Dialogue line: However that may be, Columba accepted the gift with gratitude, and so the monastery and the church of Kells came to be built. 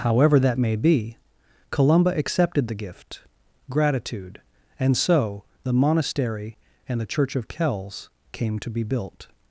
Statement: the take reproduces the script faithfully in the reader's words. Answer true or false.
false